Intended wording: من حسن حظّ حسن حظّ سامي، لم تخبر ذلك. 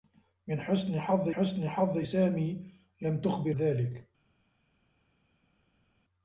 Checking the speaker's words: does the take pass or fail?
pass